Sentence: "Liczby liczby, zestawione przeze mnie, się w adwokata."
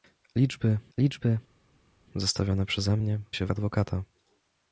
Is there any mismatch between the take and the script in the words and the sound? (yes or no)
no